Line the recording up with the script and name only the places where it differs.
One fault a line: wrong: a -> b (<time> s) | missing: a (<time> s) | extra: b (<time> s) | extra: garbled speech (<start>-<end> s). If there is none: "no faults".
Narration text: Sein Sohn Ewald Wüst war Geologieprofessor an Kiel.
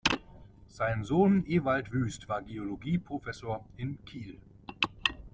wrong: an -> in (3.8 s)